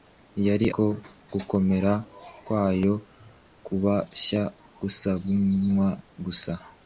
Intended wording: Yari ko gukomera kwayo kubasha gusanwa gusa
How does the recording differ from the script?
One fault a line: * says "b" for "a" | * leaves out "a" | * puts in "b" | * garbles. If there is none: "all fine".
all fine